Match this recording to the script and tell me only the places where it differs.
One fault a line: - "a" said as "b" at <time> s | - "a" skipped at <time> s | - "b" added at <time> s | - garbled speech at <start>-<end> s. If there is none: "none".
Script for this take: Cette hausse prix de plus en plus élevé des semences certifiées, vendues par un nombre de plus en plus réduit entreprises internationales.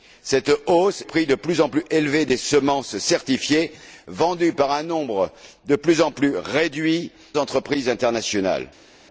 none